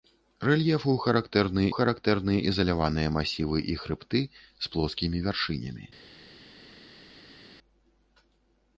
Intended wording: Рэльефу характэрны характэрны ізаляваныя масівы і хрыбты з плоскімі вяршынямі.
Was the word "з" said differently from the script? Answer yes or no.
no